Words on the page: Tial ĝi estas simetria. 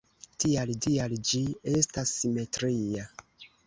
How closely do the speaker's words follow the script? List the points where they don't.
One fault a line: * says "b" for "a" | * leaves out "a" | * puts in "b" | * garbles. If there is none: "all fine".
* puts in "tial"